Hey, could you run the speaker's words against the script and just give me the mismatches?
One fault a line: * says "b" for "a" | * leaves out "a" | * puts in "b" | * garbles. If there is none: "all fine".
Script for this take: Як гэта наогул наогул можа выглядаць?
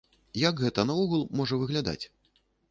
* leaves out "наогул"